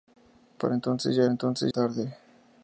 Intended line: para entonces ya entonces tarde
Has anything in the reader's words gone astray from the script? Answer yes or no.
no